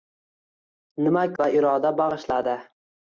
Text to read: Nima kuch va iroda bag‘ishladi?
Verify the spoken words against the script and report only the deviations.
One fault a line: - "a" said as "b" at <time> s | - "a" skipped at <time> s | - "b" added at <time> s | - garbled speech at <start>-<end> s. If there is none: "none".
- "kuch" skipped at 1.3 s